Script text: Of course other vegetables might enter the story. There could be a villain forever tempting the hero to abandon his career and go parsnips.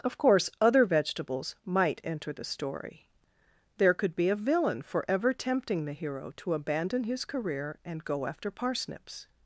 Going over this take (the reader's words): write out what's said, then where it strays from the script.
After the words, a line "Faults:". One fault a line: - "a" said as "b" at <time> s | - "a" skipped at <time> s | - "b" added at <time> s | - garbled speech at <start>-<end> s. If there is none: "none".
Of course other vegetables might enter the story. There could be a villain forever tempting the hero to abandon his career and go after parsnips.
Faults:
- "after" added at 8.2 s